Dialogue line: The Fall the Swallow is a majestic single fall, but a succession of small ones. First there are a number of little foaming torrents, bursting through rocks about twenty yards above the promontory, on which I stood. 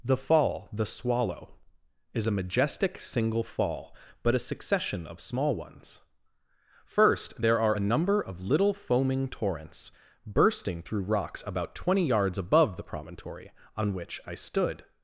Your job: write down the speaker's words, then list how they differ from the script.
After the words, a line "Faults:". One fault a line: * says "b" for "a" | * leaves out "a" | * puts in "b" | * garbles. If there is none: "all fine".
The Fall the Swallow is a majestic single fall, but a succession of small ones. First there are a number of little foaming torrents, bursting through rocks about twenty yards above the promontory, on which I stood.
Faults:
all fine